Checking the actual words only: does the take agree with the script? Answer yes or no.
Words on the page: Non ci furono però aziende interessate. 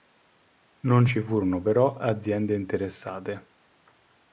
yes